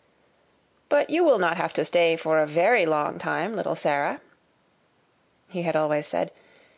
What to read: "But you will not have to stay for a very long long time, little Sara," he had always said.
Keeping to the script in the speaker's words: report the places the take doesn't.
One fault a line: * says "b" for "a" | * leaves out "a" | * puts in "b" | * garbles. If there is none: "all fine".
* leaves out "long"